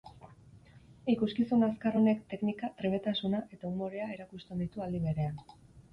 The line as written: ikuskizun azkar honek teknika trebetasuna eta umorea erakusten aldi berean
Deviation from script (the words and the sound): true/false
true